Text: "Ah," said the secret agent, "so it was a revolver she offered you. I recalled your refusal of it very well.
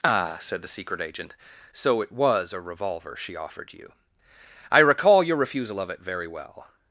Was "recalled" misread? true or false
true